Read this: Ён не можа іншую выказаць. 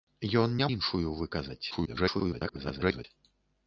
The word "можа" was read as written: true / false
false